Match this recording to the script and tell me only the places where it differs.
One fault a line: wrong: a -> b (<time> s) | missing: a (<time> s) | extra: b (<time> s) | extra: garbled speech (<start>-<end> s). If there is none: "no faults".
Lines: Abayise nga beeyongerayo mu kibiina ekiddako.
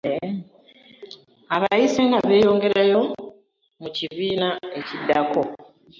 no faults